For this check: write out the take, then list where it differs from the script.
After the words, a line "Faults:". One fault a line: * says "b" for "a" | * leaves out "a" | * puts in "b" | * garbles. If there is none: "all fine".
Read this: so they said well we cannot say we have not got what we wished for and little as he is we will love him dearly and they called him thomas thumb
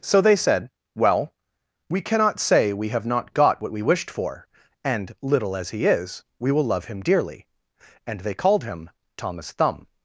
so they said well we cannot say we have not got what we wished for and little as he is we will love him dearly and they called him thomas thumb
Faults:
all fine